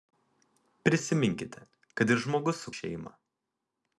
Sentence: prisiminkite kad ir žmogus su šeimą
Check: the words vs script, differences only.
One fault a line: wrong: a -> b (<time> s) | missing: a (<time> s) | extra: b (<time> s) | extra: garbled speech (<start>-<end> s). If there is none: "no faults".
no faults